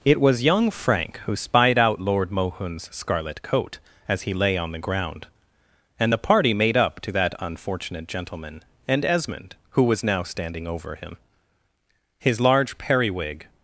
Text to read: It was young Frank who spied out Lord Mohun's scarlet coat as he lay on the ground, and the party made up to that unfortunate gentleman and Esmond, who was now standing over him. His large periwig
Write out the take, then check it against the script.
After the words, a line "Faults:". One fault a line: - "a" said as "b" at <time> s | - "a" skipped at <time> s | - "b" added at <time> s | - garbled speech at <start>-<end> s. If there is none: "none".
It was young Frank who spied out Lord Mohun's scarlet coat as he lay on the ground, and the party made up to that unfortunate gentleman and Esmond, who was now standing over him. His large periwig
Faults:
none